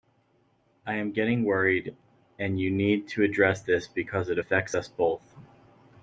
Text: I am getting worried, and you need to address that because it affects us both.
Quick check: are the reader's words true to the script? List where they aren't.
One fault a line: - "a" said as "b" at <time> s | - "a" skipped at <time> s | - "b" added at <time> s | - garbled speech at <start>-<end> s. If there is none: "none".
- "that" said as "this" at 3.6 s